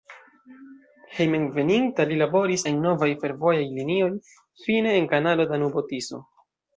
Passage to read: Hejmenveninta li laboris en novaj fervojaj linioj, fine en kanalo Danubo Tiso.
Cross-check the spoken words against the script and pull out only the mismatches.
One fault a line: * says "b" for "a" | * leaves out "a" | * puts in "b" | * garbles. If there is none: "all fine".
all fine